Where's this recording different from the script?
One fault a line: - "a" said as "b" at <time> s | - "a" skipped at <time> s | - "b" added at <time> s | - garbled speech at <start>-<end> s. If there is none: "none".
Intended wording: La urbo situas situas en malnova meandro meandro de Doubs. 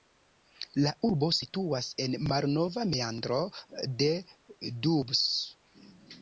- "situas" skipped at 1.9 s
- "meandro" skipped at 3.4 s